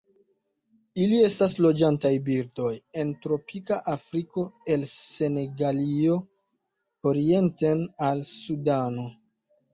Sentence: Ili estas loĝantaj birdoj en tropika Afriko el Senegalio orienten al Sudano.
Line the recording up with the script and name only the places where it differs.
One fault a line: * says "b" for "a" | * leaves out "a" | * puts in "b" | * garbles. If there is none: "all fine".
all fine